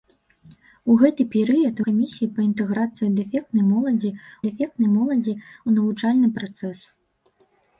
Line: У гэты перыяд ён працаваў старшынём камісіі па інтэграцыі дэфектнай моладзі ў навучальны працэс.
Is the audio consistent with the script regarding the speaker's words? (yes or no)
no